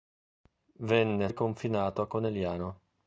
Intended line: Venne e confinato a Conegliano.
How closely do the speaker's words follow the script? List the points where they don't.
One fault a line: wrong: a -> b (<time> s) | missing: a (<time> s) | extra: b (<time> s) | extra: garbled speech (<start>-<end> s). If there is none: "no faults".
no faults